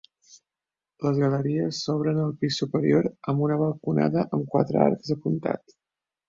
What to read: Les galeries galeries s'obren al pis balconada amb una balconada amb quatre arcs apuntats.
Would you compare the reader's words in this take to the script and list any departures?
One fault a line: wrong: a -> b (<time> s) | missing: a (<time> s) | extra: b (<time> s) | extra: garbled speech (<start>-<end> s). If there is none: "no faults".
missing: galeries (1.8 s)
wrong: balconada -> superior (2.6 s)